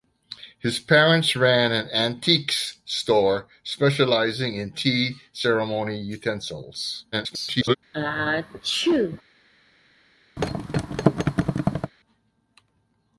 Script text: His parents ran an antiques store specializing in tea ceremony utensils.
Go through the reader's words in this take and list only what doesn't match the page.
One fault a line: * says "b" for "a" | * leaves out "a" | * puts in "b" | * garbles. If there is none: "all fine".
* garbles